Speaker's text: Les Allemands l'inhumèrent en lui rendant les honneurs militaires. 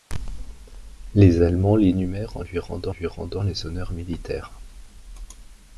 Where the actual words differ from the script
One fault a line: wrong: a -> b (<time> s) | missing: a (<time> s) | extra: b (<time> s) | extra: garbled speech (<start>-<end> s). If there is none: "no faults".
extra: lui rendant (2.9 s)